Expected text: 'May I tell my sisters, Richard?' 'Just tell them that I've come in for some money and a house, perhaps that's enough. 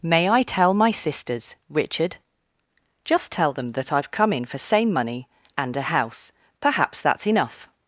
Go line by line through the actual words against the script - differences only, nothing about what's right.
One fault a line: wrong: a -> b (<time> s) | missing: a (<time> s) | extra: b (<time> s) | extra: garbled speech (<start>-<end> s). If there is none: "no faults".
wrong: some -> same (4.6 s)